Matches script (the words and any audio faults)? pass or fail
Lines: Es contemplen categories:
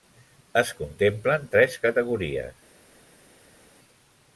fail